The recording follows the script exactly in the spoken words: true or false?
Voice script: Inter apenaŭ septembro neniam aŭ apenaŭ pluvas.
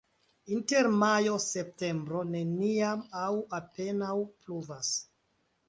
false